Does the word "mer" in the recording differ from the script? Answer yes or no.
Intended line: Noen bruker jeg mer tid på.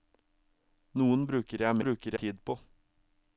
yes